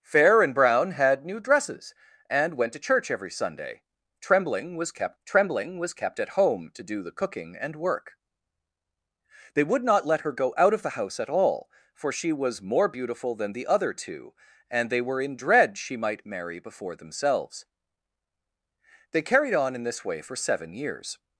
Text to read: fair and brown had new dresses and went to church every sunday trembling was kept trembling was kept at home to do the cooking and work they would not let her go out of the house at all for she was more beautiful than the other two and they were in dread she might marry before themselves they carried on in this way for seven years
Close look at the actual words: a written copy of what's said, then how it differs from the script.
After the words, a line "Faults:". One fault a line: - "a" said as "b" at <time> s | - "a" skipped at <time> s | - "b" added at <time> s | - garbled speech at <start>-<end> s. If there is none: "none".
fair and brown had new dresses and went to church every sunday trembling was kept trembling was kept at home to do the cooking and work they would not let her go out of the house at all for she was more beautiful than the other two and they were in dread she might marry before themselves they carried on in this way for seven years
Faults:
none